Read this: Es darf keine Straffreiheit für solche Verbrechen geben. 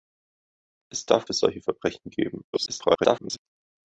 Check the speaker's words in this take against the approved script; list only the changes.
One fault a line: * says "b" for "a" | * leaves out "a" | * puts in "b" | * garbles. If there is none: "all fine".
* leaves out "keine Straffreiheit"
* garbles